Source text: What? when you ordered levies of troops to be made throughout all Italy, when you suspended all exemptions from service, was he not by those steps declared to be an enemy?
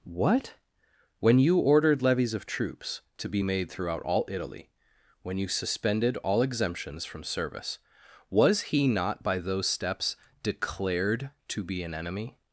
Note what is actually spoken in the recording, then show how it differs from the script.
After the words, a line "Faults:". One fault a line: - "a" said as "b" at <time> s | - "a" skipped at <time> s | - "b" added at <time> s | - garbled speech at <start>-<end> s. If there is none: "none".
What? when you ordered levies of troops to be made throughout all Italy, when you suspended all exemptions from service, was he not by those steps declared to be an enemy?
Faults:
none